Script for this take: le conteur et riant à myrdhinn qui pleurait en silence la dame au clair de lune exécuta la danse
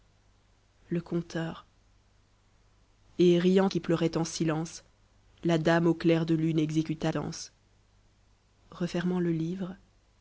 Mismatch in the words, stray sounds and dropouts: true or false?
true